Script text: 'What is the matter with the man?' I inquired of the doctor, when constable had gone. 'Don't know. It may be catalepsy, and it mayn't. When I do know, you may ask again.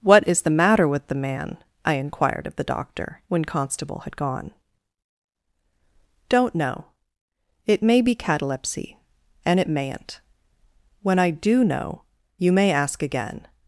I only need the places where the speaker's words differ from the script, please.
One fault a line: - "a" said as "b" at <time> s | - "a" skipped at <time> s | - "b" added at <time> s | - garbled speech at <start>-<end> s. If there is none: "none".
none